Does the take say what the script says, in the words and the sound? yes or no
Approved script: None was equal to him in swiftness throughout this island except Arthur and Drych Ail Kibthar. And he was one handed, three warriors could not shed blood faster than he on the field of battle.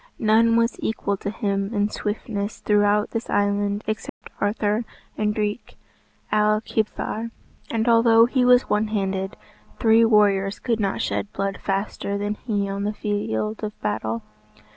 no